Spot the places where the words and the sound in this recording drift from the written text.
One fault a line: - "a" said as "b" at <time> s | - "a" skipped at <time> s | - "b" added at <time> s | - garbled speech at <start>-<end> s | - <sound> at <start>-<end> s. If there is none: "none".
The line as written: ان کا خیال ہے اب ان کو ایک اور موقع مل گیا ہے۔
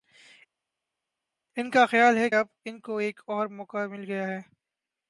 none